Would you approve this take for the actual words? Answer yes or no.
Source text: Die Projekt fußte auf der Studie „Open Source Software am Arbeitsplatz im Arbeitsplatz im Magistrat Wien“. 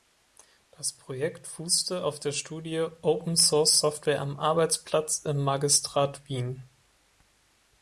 no